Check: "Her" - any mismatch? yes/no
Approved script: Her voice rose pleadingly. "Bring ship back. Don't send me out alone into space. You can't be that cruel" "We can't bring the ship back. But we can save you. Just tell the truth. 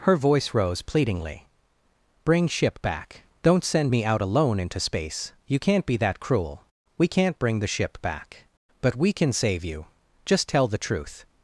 no